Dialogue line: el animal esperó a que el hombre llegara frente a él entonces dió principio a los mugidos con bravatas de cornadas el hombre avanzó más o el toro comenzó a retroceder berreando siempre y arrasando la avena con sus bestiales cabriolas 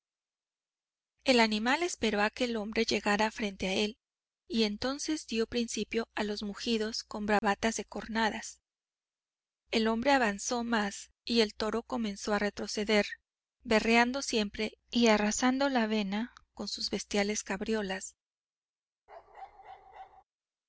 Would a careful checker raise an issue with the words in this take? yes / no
yes